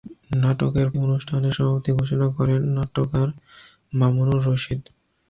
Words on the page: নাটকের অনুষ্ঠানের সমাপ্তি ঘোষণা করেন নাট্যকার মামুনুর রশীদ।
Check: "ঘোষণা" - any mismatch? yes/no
no